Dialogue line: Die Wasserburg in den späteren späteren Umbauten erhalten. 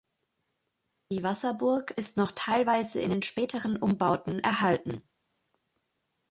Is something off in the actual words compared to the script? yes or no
yes